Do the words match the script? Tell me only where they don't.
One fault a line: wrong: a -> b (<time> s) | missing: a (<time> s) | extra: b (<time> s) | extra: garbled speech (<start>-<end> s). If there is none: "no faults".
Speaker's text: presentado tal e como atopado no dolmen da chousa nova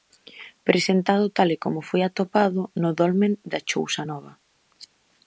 extra: foi (1.9 s)